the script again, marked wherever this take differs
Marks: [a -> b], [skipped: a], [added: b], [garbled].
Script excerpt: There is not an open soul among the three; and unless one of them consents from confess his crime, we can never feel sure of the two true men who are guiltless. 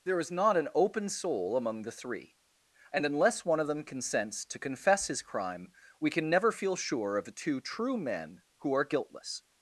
There is not an open soul among the three; and unless one of them consents [from -> to] confess his crime, we can never feel sure of the two true men who are guiltless.